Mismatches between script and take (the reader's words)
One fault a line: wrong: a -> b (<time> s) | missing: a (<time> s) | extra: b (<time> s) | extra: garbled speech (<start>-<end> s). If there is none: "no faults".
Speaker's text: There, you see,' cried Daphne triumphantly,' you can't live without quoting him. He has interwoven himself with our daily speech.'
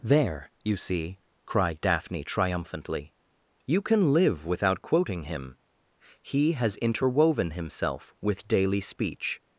wrong: can't -> can (3.8 s)
missing: our (8.5 s)